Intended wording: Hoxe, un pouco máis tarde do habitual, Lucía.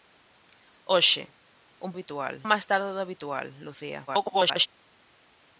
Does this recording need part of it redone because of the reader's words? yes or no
yes